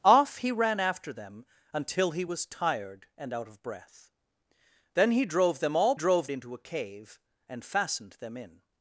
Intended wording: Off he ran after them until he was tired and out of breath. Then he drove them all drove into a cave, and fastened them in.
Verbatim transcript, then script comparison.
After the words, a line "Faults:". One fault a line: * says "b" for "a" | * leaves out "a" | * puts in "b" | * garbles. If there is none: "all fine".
Off he ran after them until he was tired and out of breath. Then he drove them all drove into a cave, and fastened them in.
Faults:
all fine